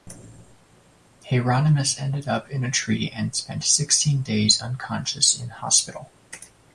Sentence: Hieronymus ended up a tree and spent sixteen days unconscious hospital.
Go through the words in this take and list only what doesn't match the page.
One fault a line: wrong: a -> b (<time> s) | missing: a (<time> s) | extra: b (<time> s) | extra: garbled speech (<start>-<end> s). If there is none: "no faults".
extra: in (2.5 s)
extra: in (5.4 s)